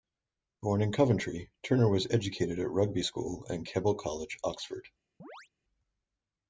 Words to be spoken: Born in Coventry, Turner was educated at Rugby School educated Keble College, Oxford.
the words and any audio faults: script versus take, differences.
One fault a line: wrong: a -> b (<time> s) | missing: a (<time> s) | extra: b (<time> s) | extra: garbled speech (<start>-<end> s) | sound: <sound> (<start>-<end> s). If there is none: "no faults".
wrong: educated -> and (3.5 s)
sound: chirp (5.2-5.5 s)